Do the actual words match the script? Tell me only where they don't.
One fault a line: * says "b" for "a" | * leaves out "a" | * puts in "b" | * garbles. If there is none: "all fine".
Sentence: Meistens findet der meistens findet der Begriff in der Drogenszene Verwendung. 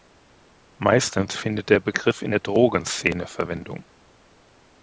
* leaves out "meistens findet der"